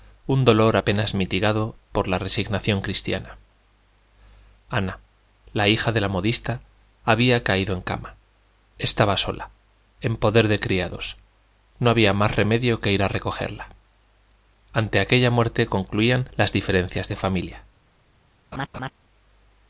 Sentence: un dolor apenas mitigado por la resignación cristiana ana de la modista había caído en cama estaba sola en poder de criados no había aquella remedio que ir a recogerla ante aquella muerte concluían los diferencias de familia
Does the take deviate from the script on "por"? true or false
false